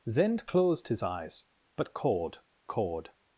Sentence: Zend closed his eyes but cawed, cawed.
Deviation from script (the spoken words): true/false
false